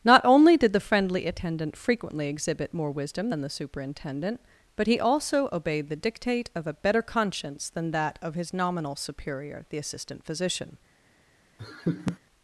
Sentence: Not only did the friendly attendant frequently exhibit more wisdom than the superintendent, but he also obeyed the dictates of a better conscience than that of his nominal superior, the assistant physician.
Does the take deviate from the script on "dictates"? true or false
true